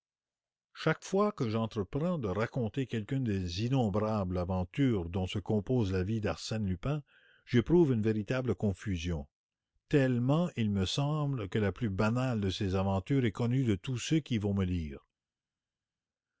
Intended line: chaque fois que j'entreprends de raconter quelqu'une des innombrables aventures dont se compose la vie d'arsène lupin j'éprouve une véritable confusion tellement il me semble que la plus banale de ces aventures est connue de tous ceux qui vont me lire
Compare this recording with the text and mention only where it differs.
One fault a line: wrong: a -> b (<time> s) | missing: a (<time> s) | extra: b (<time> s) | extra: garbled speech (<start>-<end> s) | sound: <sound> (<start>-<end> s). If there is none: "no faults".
no faults